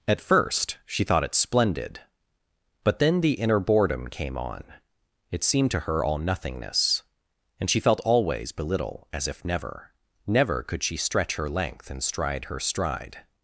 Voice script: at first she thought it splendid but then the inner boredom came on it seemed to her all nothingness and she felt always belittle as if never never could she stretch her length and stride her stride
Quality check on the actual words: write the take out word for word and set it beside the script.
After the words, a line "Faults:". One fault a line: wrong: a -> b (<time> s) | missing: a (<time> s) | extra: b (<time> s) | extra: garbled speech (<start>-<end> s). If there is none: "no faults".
at first she thought it splendid but then the inner boredom came on it seemed to her all nothingness and she felt always belittle as if never never could she stretch her length and stride her stride
Faults:
no faults